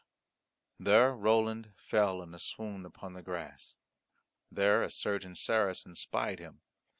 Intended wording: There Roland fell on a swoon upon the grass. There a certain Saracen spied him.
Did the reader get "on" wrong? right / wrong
wrong